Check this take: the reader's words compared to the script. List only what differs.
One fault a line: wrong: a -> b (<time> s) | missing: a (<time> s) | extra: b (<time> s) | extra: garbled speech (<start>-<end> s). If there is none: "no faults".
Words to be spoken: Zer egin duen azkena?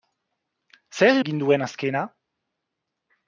no faults